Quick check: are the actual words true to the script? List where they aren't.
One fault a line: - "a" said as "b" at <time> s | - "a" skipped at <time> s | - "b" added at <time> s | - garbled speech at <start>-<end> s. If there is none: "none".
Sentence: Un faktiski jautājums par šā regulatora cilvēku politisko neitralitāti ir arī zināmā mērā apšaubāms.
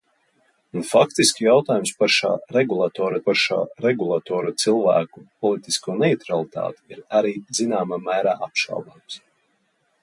- "par šā regulatora" added at 3.3 s